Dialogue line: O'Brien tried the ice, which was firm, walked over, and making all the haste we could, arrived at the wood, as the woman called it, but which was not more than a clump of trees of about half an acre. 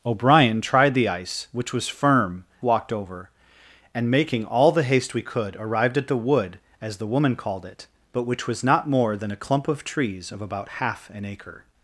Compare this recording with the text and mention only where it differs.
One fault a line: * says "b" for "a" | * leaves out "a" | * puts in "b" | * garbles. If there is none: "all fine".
all fine